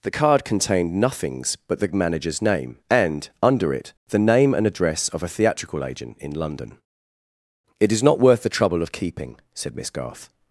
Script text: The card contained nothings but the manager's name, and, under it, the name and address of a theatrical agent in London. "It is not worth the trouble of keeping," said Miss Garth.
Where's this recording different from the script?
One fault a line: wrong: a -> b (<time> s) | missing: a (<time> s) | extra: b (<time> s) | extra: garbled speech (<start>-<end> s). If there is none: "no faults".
no faults